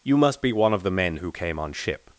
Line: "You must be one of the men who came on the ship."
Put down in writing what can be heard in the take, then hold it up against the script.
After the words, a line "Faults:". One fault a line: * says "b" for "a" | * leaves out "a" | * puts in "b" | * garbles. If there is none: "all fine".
"You must be one of the men who came on ship."
Faults:
* leaves out "the"